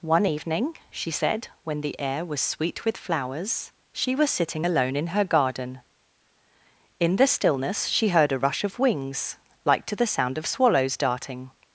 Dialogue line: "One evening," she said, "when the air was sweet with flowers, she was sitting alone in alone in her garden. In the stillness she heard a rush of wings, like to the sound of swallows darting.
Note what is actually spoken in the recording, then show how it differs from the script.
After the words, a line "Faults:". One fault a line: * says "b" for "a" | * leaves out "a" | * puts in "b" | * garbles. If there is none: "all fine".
"One evening," she said, "when the air was sweet with flowers, she was sitting alone in her garden. In the stillness she heard a rush of wings, like to the sound of swallows darting.
Faults:
* leaves out "alone in"